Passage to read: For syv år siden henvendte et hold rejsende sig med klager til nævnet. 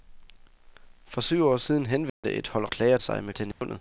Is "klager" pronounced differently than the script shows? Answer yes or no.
yes